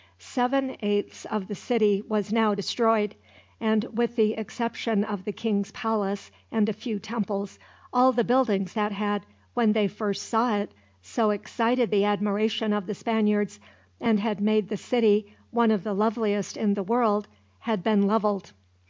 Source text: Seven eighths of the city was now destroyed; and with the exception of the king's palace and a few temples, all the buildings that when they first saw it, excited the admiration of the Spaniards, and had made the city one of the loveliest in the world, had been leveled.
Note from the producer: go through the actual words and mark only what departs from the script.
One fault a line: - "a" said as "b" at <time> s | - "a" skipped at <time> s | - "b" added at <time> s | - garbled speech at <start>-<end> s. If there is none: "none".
- "had" added at 8.9 s
- "so" added at 11.0 s